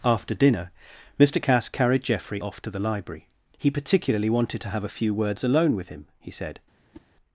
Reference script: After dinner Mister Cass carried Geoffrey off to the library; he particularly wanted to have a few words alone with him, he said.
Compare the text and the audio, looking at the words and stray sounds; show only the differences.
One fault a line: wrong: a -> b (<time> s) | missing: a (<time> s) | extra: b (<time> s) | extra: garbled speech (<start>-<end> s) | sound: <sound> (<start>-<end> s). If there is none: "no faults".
sound: whoosh (6.9-7.1 s)